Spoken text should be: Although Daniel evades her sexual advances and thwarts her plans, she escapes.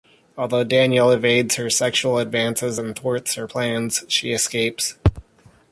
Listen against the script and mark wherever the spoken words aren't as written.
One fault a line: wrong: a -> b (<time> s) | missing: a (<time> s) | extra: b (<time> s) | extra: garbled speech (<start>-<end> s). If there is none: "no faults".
no faults